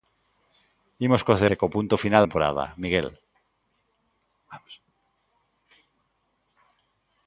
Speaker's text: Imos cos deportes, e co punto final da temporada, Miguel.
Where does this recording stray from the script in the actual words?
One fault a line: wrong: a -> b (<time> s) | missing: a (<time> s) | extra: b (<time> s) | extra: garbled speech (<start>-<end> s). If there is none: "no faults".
missing: deportes (1.4 s)
missing: da (2.2 s)